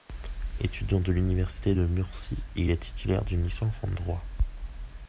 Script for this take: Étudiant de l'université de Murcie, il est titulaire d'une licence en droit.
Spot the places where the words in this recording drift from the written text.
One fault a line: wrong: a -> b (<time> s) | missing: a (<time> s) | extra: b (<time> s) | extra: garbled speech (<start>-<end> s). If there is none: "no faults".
no faults